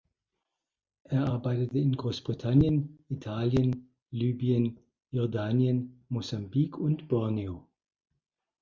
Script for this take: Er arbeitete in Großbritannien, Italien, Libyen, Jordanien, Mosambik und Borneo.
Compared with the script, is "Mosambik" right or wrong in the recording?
right